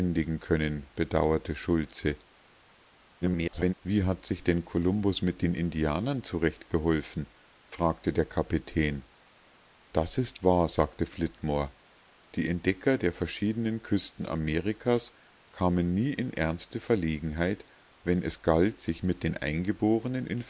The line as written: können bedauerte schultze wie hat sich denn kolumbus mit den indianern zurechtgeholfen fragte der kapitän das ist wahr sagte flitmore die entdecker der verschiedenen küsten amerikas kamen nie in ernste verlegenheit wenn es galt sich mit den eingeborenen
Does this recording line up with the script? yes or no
no